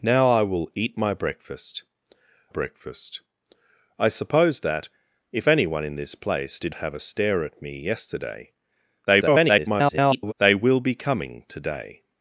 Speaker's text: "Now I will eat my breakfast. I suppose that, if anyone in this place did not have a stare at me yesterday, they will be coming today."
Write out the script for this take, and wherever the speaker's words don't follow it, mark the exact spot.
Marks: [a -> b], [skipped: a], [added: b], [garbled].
"Now I will eat my breakfast. [added: breakfast] I suppose that, if anyone in this place did [skipped: not] have a stare at me yesterday, [garbled] they will be coming today."